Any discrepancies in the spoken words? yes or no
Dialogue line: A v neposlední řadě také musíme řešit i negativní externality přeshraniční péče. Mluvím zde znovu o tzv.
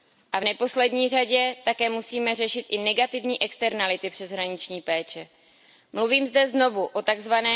no